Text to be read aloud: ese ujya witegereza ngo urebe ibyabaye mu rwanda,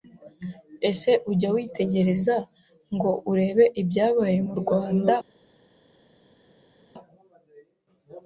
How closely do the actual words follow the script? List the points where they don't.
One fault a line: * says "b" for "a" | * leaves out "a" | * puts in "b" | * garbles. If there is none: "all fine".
all fine